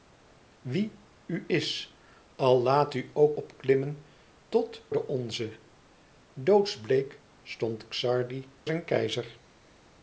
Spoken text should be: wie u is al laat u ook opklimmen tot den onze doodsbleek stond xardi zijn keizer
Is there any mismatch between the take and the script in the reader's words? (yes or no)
no